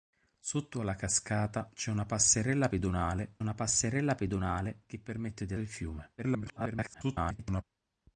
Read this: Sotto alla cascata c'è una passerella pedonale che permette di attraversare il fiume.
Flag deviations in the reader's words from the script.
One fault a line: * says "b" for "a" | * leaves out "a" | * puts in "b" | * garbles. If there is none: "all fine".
* puts in "una passerella pedonale"
* leaves out "attraversare"
* garbles